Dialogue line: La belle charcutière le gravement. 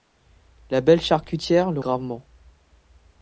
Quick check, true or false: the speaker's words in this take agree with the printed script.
true